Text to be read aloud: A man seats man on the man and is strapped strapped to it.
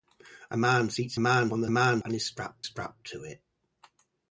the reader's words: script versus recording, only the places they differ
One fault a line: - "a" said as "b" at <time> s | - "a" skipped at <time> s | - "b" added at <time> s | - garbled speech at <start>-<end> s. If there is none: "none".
none